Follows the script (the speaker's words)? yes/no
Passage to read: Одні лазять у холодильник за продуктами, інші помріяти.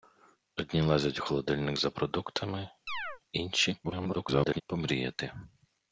no